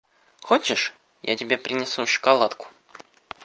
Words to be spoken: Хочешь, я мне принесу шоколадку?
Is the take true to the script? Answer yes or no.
no